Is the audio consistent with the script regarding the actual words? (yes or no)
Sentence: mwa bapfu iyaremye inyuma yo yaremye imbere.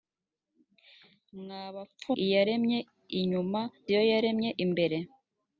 yes